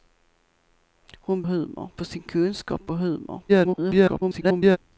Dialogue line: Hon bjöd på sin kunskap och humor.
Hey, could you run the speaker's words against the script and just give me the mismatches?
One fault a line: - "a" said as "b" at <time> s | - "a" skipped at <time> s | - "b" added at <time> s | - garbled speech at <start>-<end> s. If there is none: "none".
- "bjöd" said as "humor" at 1.5 s
- garbled speech at 3.5-4.8 s